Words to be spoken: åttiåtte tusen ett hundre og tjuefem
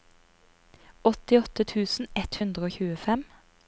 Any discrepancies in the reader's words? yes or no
no